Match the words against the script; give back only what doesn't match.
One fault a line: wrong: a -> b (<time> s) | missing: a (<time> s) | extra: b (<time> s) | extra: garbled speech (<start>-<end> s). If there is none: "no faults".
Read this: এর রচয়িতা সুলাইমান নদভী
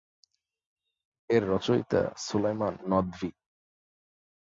no faults